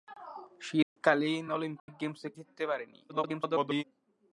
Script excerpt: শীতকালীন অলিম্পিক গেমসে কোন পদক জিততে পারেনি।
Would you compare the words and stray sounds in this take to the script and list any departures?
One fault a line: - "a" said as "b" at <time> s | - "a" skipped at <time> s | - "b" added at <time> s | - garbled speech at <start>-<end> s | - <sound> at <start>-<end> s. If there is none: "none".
- dropout at 0.8-1.0 s
- dropout at 1.8-1.9 s
- "কোন পদক" skipped at 2.3 s
- garbled speech at 3.1-3.8 s